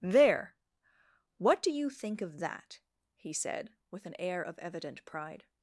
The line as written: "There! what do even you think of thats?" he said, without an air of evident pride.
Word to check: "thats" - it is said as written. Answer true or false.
false